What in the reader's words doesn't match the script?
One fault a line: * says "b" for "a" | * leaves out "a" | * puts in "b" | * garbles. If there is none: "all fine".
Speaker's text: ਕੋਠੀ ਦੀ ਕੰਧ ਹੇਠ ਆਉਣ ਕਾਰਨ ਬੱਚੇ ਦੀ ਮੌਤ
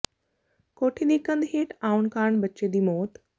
all fine